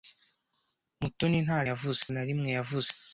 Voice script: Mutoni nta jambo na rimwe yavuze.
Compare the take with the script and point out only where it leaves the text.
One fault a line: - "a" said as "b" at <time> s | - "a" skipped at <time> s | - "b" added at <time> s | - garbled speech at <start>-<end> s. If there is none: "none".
- "jambo" said as "yavuze" at 1.7 s